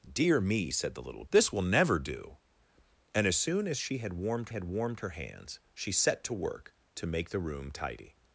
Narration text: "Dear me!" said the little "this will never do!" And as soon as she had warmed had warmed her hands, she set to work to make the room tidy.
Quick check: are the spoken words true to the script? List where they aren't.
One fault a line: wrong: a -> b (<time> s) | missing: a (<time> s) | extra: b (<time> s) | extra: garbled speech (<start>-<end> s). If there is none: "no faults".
no faults